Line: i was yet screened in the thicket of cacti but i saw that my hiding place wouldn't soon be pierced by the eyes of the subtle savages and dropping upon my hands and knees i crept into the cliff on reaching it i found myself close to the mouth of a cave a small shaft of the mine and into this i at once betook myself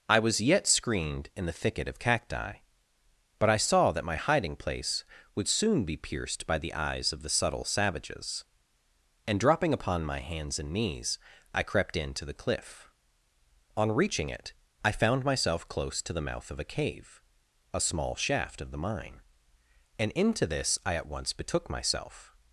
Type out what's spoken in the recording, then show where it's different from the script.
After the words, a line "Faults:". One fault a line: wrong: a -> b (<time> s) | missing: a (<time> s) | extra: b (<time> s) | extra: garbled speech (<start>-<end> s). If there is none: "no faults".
i was yet screened in the thicket of cacti but i saw that my hiding place would soon be pierced by the eyes of the subtle savages and dropping upon my hands and knees i crept into the cliff on reaching it i found myself close to the mouth of a cave a small shaft of the mine and into this i at once betook myself
Faults:
wrong: wouldn't -> would (5.3 s)